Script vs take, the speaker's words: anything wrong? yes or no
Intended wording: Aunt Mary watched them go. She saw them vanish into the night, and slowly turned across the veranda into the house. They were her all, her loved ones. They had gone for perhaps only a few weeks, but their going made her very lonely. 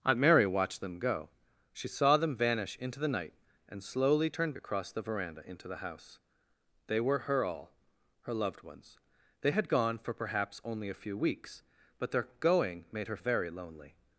no